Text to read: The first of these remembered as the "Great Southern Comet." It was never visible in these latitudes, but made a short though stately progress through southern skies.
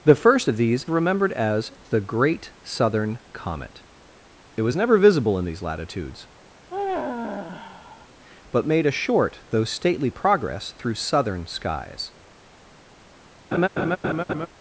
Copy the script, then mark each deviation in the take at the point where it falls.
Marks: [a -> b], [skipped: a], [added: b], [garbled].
The first of these remembered as the "Great Southern Comet." It was never visible in these latitudes, but made a short though stately progress through southern skies.